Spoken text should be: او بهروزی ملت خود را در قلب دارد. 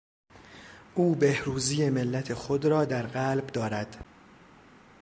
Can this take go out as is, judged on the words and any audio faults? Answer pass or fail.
pass